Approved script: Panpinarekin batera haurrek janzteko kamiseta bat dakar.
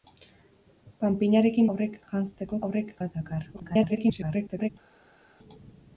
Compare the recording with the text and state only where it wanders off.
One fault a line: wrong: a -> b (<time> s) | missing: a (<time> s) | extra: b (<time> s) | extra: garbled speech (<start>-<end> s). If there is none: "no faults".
missing: batera (1.7 s)
wrong: kamiseta -> haurrek (2.7 s)
extra: garbled speech (3.5-4.7 s)